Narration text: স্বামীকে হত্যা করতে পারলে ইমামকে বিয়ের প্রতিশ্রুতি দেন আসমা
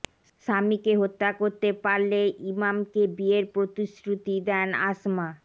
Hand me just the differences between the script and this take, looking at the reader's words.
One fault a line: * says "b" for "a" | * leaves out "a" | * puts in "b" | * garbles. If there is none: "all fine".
all fine